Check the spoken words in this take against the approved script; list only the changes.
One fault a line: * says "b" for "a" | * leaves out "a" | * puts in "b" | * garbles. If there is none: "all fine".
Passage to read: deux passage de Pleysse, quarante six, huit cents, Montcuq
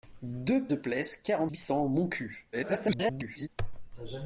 * leaves out "passage"
* leaves out "six"
* garbles